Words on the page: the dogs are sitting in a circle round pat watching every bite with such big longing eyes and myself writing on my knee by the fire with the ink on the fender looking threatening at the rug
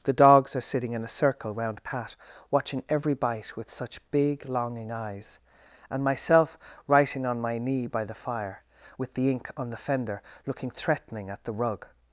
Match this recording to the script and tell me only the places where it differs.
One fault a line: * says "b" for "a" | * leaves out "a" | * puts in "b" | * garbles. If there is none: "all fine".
all fine